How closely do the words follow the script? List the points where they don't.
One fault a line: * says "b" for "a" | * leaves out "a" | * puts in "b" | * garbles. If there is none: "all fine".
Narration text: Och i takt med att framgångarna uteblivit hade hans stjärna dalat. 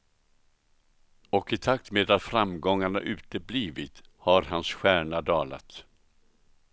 * says "har" for "hade"